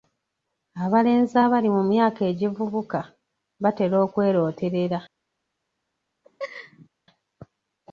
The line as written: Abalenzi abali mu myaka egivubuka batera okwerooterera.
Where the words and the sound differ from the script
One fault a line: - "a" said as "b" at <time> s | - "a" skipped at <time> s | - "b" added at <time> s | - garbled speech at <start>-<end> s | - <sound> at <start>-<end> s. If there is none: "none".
- laugh at 6.2-6.9 s